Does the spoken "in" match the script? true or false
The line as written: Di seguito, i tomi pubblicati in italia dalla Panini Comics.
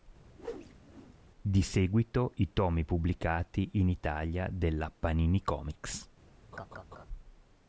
true